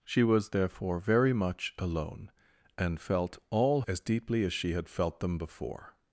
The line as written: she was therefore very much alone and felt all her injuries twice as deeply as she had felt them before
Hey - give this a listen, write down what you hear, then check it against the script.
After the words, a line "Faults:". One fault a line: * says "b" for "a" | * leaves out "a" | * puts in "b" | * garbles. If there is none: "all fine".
she was therefore very much alone and felt all as deeply as she had felt them before
Faults:
* leaves out "her injuries twice"